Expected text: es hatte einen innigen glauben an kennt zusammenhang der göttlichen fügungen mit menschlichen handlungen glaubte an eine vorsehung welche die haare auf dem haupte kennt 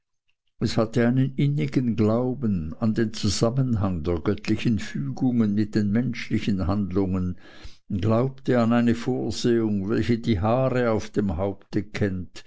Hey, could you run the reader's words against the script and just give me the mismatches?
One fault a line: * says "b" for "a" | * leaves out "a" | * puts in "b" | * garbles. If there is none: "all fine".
* says "den" for "kennt"
* puts in "den"